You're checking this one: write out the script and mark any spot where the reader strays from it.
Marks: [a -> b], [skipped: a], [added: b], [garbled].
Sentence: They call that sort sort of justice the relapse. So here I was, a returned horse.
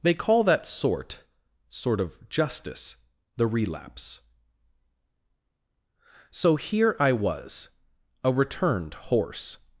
They call that sort sort of justice the relapse. So here I was, a returned horse.